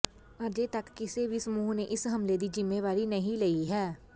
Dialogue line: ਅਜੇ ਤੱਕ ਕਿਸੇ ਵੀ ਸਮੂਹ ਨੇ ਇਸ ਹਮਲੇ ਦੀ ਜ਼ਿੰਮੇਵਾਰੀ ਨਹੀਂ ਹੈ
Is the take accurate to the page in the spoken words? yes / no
no